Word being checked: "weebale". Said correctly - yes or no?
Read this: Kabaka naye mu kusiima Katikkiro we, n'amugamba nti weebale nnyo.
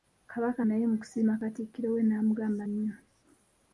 no